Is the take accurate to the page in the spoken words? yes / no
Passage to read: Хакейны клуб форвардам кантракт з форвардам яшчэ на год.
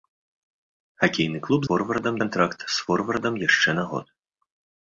yes